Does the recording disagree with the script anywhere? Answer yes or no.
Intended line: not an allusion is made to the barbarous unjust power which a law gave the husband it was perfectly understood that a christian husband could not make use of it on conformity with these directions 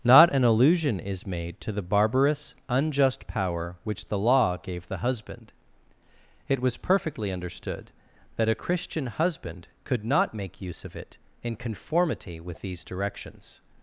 yes